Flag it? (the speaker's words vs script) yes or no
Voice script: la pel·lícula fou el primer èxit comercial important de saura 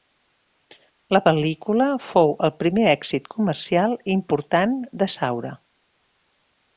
no